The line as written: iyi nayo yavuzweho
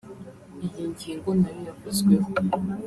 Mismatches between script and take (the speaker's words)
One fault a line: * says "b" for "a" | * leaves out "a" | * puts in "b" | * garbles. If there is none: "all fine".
* puts in "ngingo"